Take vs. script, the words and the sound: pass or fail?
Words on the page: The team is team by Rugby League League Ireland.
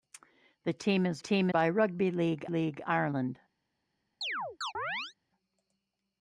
fail